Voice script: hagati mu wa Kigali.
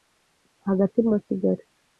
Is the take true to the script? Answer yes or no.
yes